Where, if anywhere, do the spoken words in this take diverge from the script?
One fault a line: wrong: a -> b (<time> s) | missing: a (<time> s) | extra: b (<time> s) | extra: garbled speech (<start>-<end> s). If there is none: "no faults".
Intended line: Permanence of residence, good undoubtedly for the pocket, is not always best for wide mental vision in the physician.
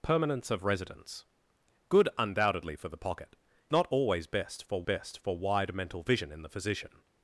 missing: is (3.4 s)
extra: best for (4.8 s)